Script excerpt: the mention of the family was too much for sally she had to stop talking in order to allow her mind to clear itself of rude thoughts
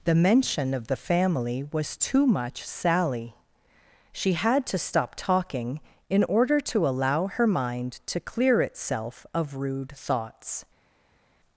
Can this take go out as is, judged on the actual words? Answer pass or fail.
fail